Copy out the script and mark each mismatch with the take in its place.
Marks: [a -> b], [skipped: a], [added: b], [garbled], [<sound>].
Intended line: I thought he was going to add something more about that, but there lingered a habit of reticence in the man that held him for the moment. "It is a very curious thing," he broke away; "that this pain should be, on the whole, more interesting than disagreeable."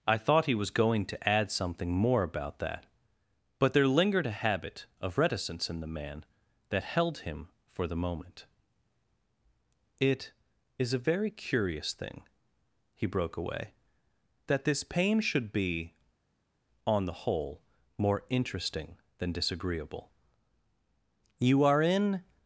I thought he was going to add something more about that, but there lingered a habit of reticence in the man that held him for the moment. "It is a very curious thing," he broke away; "that this pain should be, on the whole, more interesting than disagreeable." [added: You are in]